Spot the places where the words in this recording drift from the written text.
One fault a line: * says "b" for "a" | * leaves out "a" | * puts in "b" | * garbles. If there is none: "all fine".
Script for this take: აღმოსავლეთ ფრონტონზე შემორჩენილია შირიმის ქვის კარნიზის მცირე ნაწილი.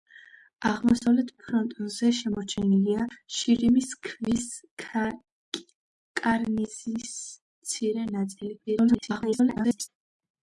* garbles